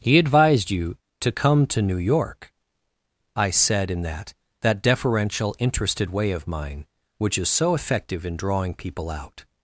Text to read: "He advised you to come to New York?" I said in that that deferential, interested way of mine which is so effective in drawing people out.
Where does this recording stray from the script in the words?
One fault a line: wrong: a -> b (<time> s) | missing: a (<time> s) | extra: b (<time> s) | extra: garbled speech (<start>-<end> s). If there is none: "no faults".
no faults